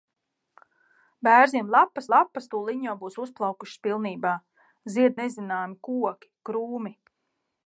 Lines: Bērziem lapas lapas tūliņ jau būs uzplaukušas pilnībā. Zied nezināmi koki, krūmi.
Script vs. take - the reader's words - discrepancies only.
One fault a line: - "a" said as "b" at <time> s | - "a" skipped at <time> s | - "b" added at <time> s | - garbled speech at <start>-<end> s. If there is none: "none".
none